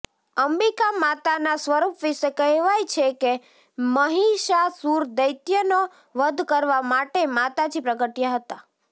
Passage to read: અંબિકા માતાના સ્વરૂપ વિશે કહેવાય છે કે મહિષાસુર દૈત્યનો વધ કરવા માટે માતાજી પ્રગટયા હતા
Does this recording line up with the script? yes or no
yes